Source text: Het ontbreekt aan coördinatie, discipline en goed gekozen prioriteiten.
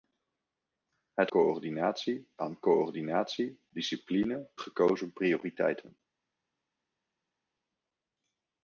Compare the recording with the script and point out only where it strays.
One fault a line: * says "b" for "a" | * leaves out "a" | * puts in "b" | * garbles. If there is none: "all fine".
* says "coördinatie" for "ontbreekt"
* leaves out "en goed"